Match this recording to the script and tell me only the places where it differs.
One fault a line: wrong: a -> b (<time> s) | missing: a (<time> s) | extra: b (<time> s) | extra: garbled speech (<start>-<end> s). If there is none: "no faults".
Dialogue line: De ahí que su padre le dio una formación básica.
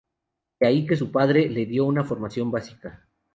no faults